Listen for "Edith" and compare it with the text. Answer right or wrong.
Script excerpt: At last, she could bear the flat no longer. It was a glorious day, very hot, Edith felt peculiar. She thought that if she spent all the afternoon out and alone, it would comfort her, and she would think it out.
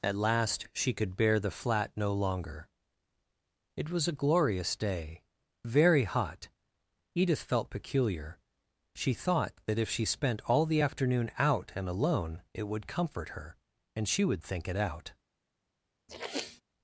right